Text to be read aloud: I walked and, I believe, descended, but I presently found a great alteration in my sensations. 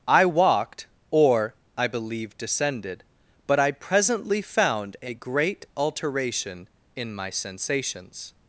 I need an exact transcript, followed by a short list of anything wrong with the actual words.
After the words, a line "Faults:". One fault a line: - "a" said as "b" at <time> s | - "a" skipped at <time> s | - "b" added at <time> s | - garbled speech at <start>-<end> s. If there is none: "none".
I walked or, I believe, descended, but I presently found a great alteration in my sensations.
Faults:
- "and" said as "or" at 1.1 s